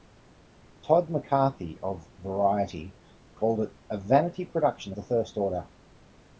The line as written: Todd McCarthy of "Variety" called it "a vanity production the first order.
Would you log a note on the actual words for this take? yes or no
no